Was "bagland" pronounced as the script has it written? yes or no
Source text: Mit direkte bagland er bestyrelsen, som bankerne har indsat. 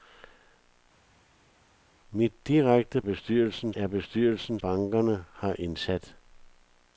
no